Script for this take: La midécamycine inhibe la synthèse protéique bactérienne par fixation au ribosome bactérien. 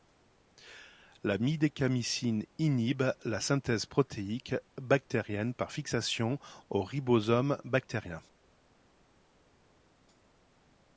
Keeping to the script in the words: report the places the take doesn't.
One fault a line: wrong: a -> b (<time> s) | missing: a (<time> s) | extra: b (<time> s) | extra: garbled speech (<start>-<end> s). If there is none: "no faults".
no faults